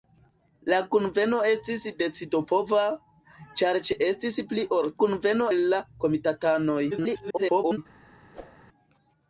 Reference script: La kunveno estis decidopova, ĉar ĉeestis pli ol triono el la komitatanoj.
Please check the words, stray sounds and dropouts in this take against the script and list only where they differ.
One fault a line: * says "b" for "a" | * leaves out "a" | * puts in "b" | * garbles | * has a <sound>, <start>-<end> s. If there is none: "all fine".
* says "kunveno" for "triono"
* garbles
* has a whoosh, 8.3-8.6 s